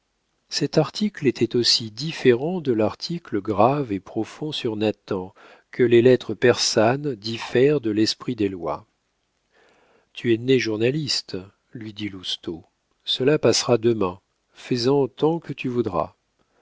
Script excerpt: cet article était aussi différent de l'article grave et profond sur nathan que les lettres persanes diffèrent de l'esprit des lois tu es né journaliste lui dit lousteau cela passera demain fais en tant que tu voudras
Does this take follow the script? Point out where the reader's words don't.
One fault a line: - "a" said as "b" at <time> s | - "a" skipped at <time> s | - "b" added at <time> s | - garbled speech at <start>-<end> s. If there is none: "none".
none